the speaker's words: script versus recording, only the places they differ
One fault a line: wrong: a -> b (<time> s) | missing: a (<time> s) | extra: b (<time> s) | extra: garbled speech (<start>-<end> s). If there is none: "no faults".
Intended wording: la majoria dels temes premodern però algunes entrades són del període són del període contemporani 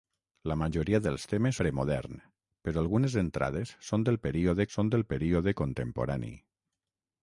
no faults